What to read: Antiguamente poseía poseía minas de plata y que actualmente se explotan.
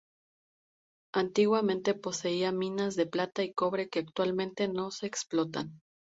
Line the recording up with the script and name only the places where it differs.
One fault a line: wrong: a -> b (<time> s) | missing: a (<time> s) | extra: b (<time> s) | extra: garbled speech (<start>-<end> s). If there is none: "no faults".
missing: poseía (2.5 s)
extra: cobre (3.5 s)
extra: no (4.7 s)